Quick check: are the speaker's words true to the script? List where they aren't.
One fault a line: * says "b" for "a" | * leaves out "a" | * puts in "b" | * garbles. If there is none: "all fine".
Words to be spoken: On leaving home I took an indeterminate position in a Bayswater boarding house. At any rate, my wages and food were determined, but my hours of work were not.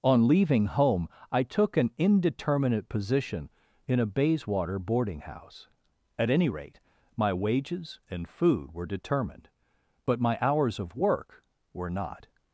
all fine